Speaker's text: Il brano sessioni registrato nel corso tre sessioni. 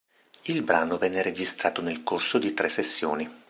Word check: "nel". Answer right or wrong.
right